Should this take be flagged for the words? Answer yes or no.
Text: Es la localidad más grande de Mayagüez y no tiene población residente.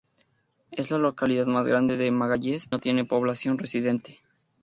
yes